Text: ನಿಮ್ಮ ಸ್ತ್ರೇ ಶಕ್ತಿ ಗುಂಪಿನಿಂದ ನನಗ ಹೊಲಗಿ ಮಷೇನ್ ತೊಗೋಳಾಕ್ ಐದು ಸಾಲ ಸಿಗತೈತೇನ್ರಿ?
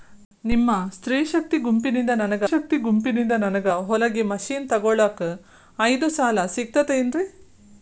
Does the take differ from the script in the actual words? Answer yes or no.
yes